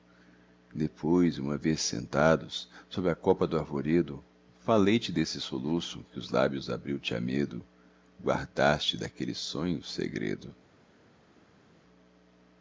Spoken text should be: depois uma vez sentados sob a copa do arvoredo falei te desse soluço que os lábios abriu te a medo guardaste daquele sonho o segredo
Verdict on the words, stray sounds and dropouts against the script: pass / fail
pass